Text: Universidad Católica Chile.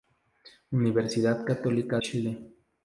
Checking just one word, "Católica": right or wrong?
right